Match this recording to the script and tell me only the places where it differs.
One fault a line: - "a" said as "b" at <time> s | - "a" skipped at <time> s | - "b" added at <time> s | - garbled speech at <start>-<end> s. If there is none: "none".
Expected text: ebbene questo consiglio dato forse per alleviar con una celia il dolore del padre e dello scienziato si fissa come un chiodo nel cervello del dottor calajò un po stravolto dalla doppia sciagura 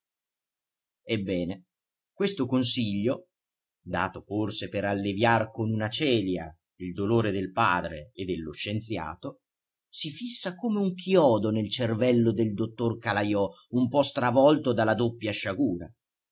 none